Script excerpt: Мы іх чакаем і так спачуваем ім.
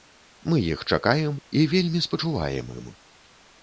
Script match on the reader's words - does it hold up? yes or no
no